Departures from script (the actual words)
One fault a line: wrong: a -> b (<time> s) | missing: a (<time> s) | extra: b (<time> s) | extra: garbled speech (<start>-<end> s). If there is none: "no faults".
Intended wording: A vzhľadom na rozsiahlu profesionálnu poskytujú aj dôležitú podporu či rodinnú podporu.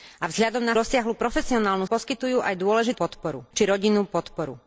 no faults